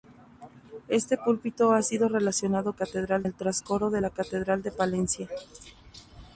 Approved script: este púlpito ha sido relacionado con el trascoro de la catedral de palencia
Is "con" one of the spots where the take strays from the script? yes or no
yes